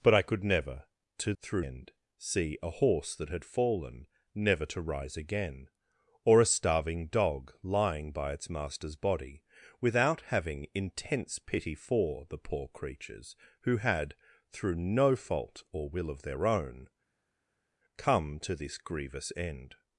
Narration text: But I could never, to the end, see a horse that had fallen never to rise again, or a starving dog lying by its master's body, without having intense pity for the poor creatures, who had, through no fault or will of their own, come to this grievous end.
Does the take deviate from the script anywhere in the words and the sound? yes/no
yes